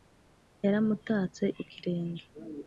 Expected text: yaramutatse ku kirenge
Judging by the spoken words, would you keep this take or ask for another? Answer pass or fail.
pass